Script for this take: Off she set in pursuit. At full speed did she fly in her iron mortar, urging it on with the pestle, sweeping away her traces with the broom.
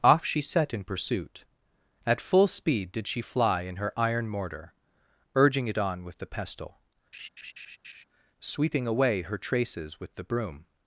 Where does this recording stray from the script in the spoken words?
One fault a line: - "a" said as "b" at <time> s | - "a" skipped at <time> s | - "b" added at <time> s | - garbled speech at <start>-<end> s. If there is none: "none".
none